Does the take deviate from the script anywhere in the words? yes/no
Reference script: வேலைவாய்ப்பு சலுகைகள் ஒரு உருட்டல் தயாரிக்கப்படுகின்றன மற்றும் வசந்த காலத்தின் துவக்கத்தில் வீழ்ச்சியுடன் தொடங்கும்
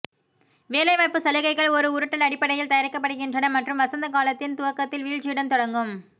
yes